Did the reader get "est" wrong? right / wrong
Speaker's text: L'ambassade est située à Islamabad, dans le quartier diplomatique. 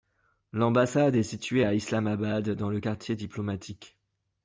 right